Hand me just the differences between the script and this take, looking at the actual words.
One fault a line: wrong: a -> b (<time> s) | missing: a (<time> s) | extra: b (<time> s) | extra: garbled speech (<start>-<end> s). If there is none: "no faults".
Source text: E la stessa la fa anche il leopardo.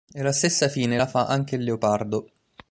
extra: fine (0.7 s)